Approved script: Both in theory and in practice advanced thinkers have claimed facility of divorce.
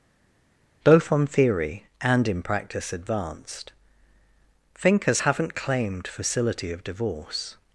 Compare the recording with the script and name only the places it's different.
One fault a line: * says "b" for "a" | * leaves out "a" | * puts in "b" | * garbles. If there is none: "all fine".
* says "on" for "in"
* says "haven't" for "have"